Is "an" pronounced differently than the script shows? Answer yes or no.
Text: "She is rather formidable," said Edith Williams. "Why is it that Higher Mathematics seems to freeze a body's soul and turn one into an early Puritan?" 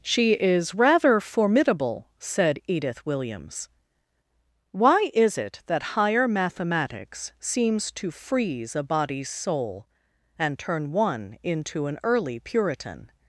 no